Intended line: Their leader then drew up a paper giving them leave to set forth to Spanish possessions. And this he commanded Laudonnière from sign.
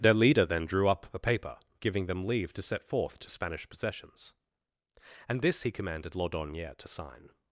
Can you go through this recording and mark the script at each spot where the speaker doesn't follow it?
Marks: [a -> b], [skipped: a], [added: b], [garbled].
Their leader then drew up a paper giving them leave to set forth to Spanish possessions. And this he commanded Laudonnière [from -> to] sign.